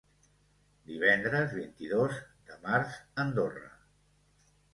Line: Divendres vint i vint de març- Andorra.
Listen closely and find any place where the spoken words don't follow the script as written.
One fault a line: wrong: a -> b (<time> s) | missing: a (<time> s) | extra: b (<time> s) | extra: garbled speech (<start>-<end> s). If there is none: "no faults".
wrong: vint -> dos (1.9 s)